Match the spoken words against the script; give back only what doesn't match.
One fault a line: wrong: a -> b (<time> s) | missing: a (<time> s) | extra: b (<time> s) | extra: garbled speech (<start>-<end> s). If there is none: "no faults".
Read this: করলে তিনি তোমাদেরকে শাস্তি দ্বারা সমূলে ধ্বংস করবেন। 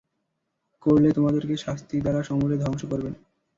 missing: তিনি (1.1 s)